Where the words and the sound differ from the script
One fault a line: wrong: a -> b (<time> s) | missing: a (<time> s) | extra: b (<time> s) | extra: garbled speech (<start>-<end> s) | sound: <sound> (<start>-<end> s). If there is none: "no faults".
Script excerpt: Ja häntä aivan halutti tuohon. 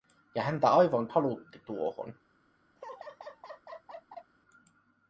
sound: laugh (2.8-4.3 s)